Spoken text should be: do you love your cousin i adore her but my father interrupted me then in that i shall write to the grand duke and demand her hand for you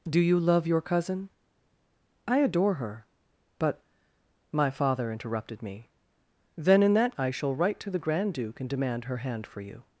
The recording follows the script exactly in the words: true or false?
true